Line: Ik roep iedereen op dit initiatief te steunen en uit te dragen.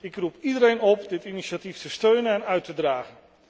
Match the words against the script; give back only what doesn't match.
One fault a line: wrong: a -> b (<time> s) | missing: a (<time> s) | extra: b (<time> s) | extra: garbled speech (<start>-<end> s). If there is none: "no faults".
no faults